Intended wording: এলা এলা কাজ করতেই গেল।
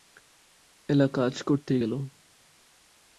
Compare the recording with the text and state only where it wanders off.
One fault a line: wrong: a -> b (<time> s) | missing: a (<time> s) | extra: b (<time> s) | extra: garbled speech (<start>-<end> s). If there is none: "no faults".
missing: এলা (1.1 s)